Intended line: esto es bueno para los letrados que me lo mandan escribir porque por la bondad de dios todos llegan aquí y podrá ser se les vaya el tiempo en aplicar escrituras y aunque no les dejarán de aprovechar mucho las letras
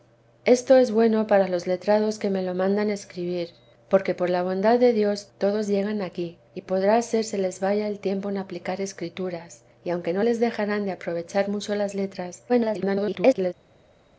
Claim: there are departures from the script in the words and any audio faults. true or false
true